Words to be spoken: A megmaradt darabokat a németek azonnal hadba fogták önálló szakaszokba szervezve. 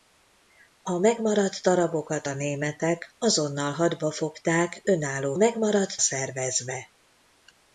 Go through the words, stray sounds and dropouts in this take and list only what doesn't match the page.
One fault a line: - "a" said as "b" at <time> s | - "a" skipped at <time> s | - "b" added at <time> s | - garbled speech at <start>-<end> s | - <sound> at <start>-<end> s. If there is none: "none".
- "szakaszokba" said as "megmaradt" at 5.3 s